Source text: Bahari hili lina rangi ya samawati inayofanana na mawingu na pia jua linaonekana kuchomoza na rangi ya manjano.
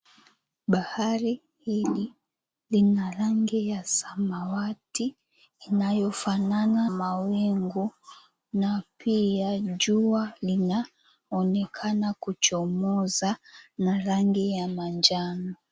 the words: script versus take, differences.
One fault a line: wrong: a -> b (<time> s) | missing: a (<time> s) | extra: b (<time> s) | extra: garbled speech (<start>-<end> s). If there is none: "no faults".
missing: na (6.9 s)